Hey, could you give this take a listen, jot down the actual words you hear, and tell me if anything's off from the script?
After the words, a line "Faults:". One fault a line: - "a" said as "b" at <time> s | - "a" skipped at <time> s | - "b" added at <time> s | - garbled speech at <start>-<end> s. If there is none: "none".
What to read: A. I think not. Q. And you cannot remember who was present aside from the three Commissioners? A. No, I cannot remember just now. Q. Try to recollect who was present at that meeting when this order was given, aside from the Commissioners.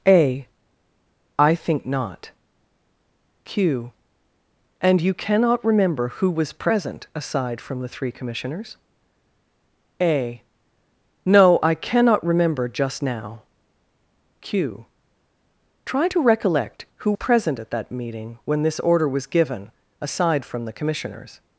A. I think not. Q. And you cannot remember who was present aside from the three Commissioners? A. No, I cannot remember just now. Q. Try to recollect who present at that meeting when this order was given, aside from the Commissioners.
Faults:
- "was" skipped at 17.1 s